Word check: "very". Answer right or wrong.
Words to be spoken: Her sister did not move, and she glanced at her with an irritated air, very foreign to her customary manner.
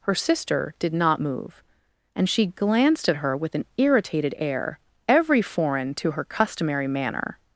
wrong